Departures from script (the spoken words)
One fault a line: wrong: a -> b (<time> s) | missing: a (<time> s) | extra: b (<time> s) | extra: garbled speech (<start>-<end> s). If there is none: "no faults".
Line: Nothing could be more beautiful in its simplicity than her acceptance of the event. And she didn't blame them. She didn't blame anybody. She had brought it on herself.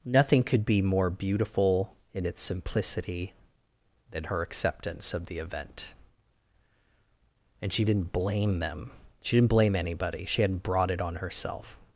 wrong: had -> hadn't (10.4 s)